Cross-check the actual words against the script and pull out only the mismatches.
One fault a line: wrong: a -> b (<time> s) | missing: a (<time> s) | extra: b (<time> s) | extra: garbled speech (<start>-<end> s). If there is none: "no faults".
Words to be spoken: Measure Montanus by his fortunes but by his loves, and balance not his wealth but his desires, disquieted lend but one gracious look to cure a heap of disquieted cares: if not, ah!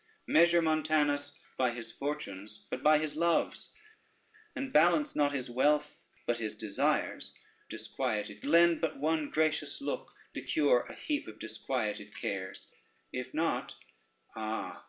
no faults